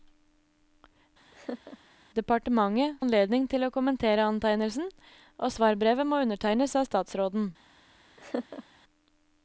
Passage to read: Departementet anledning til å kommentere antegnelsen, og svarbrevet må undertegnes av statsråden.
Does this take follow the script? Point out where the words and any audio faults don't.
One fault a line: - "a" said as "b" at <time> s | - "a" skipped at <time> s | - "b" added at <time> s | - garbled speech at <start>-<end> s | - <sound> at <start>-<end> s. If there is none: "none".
- laugh at 1.3-1.8 s
- laugh at 8.2-8.6 s